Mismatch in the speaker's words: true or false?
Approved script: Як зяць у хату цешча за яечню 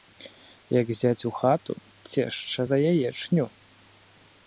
false